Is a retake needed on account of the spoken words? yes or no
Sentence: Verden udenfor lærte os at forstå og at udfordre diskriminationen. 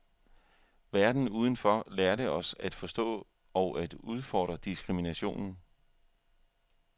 no